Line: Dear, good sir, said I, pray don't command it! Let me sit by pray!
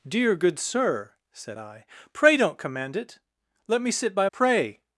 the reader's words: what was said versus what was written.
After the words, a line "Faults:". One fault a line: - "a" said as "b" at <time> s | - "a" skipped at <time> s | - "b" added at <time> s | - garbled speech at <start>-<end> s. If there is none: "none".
Dear, good sir, said I, pray don't command it! Let me sit by pray!
Faults:
none